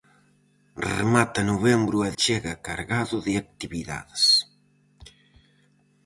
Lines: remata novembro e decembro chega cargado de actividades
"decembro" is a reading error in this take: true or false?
true